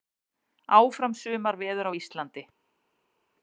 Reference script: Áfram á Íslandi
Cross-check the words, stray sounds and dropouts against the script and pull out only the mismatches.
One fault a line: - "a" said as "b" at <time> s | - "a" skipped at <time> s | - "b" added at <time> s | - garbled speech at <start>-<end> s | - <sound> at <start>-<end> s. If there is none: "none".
- "sumarveður" added at 1.2 s